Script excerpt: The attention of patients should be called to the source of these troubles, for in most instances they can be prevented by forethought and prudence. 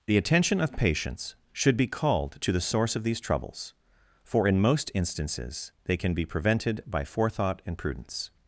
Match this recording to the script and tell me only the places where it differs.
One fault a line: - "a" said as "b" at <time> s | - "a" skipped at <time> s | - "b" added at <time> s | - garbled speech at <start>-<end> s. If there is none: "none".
none